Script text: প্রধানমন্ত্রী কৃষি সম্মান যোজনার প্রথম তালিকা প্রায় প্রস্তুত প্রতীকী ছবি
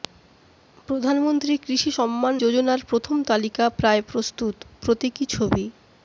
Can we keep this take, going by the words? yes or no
yes